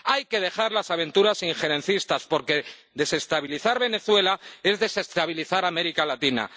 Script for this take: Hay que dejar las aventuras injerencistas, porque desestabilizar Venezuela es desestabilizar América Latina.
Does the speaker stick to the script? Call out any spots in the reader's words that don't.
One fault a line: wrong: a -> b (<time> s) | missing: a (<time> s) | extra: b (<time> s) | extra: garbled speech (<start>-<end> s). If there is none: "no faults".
no faults